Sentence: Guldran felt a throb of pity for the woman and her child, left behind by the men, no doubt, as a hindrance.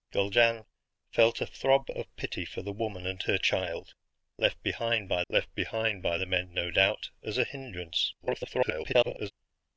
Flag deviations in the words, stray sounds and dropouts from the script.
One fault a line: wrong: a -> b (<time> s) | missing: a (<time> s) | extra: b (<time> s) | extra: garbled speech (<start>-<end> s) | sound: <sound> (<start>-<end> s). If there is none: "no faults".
extra: left behind by (5.3 s)
extra: garbled speech (8.2-9.3 s)